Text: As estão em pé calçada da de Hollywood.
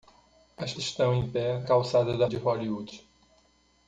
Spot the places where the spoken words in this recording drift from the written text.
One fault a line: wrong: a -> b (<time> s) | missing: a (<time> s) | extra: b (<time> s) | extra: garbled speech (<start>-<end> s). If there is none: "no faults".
no faults